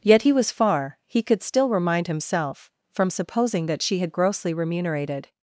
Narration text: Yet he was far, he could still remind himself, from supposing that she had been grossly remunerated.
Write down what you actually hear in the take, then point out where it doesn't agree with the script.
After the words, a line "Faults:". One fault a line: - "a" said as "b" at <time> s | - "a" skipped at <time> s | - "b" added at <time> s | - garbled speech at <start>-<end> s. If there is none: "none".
Yet he was far, he could still remind himself, from supposing that she had grossly remunerated.
Faults:
- "been" skipped at 4.1 s